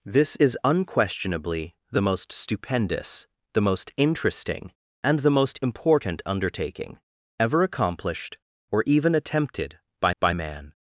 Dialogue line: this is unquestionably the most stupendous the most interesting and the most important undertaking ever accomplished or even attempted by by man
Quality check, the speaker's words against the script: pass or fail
pass